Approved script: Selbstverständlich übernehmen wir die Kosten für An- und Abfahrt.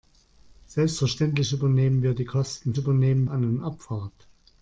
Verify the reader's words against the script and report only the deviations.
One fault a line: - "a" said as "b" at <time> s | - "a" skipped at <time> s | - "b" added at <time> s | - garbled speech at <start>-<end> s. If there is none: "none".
- "für" said as "übernehmen" at 2.8 s